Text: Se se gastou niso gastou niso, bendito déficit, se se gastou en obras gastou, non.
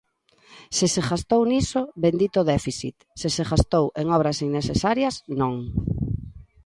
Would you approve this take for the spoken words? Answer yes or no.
no